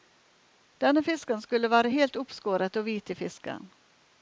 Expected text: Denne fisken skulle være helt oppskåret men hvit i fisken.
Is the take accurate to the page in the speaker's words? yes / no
no